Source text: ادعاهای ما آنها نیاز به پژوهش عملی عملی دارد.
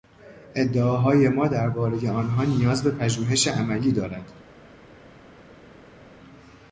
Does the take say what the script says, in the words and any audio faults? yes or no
no